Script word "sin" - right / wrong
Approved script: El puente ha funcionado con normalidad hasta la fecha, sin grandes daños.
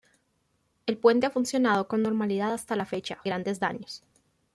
wrong